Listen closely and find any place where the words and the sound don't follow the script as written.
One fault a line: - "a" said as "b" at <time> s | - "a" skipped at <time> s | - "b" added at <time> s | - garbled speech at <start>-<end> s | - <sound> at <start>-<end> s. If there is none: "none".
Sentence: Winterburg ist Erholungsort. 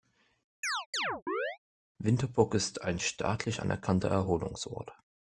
- chirp at 0.6-1.6 s
- "ein staatlich anerkannter" added at 2.8 s